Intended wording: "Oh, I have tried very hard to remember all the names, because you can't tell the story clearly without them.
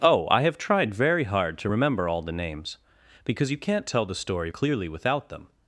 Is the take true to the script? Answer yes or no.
yes